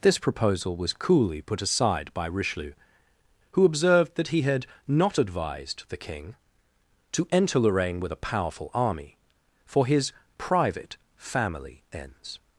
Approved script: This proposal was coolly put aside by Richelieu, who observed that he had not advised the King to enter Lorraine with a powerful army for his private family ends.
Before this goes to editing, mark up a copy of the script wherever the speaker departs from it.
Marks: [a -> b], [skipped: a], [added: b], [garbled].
This proposal was coolly put aside by Richelieu, who observed that he had not advised the King to enter Lorraine with a powerful army for his private family ends.